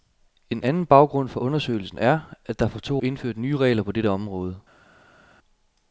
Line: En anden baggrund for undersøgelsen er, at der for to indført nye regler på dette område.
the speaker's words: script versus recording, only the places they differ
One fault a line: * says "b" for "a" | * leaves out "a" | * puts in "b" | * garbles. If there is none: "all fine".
all fine